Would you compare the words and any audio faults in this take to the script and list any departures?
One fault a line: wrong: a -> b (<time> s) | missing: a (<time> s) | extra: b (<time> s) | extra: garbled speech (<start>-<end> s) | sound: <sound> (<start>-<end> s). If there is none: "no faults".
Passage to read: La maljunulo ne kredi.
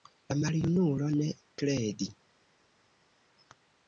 no faults